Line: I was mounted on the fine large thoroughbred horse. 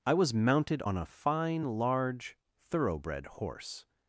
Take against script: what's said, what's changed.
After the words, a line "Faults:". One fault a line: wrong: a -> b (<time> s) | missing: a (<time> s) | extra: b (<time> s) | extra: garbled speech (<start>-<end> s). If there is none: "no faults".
I was mounted on a fine large thoroughbred horse.
Faults:
wrong: the -> a (0.9 s)